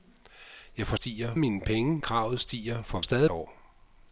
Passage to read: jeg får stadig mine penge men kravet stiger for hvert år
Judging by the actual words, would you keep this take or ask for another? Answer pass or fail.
fail